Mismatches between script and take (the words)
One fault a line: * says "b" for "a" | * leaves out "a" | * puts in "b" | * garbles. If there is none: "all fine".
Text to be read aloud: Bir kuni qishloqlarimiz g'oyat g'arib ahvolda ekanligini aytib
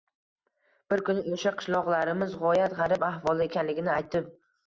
* puts in "o'sha"